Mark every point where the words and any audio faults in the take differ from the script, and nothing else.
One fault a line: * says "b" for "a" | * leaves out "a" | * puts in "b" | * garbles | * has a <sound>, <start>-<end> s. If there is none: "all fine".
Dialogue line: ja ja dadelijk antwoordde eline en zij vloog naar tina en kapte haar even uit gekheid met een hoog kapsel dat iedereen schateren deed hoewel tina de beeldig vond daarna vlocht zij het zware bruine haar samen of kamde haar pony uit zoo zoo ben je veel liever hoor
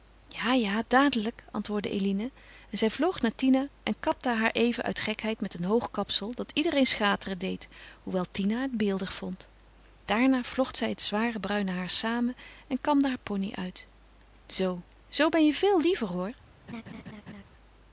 * says "het" for "de"
* says "en" for "of"
* has a laugh, 16.7-17.4 s